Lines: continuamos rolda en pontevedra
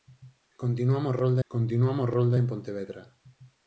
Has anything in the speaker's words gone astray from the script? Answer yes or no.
yes